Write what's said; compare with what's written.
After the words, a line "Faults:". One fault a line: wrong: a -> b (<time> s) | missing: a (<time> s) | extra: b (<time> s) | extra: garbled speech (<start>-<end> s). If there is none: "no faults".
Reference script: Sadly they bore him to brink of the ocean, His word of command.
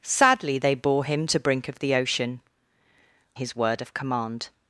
Sadly they bore him to brink of the ocean, His word of command.
Faults:
no faults